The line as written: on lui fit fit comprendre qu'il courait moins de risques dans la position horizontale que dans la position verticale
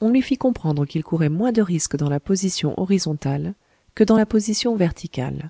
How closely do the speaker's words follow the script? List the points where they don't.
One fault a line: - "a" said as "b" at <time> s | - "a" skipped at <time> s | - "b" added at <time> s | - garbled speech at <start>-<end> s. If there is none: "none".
- "fit" skipped at 0.4 s